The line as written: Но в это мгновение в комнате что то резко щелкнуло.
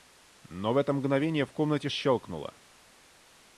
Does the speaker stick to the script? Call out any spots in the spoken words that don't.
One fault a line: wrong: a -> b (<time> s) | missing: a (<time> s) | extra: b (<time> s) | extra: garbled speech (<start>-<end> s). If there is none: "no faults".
missing: что то резко (1.9 s)